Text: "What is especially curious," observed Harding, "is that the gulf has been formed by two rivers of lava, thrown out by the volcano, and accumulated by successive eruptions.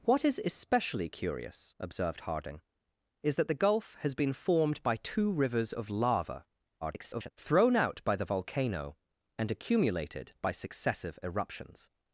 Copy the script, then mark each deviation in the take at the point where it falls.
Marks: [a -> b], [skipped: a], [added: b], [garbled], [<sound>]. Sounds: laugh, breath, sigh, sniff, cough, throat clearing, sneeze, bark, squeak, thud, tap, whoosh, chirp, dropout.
"What is especially curious," observed Harding, "is that the gulf has been formed by two rivers of lava, [garbled] thrown out by the volcano, and accumulated by successive eruptions.